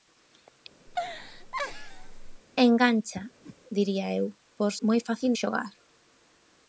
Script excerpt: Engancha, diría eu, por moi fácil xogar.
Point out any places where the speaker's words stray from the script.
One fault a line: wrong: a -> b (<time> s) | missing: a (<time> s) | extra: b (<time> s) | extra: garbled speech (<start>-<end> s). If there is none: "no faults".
no faults